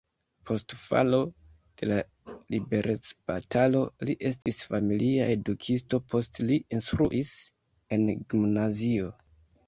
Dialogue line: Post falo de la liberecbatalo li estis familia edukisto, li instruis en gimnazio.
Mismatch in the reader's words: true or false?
true